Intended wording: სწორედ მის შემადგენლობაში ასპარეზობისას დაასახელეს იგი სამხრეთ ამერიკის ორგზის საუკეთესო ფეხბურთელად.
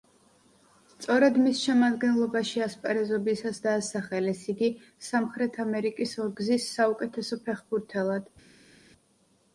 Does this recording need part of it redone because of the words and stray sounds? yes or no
no